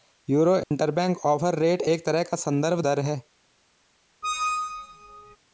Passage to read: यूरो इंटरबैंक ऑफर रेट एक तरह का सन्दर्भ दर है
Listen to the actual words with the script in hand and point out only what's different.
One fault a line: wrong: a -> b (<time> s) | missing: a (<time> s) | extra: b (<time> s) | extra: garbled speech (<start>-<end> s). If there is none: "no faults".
no faults